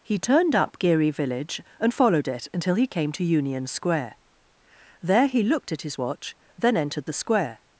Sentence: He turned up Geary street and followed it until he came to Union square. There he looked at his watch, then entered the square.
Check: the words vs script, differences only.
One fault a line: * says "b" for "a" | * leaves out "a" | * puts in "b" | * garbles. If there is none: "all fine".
* says "village" for "street"